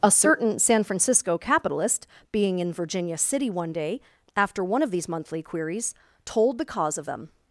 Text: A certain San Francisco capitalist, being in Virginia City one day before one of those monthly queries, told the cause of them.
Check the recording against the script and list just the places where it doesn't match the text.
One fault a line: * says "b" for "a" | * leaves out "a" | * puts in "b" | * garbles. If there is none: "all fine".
* says "after" for "before"
* says "these" for "those"